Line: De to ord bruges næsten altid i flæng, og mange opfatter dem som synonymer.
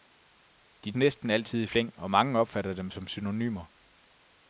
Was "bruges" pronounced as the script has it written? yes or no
no